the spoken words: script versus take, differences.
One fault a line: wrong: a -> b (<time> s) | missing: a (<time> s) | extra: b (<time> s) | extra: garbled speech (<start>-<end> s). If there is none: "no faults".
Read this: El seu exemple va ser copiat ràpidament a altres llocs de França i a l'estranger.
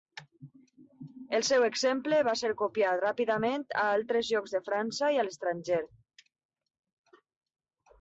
no faults